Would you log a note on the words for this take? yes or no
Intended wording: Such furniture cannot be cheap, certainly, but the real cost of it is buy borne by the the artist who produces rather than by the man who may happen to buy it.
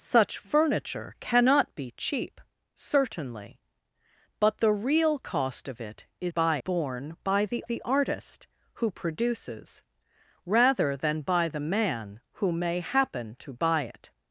no